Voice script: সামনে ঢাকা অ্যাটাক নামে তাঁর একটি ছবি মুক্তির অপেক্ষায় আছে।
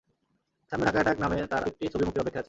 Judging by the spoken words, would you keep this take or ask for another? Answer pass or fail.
pass